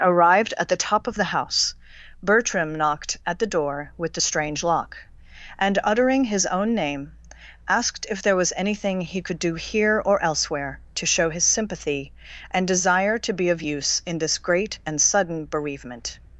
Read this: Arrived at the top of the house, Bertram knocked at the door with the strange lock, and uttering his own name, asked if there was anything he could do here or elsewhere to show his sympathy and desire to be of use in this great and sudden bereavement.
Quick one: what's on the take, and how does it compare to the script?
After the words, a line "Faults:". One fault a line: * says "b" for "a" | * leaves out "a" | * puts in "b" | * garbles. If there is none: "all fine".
Arrived at the top of the house, Bertram knocked at the door with the strange lock, and uttering his own name, asked if there was anything he could do here or elsewhere to show his sympathy and desire to be of use in this great and sudden bereavement.
Faults:
all fine